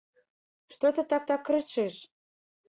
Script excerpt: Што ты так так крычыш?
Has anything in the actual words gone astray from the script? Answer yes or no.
no